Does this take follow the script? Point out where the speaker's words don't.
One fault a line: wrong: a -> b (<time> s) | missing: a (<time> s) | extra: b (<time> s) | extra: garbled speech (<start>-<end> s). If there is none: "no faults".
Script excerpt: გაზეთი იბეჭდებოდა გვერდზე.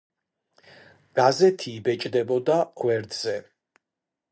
no faults